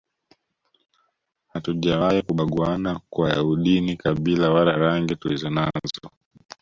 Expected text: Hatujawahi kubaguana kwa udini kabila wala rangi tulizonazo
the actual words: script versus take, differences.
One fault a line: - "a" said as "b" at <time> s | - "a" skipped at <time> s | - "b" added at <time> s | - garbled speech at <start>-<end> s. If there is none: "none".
none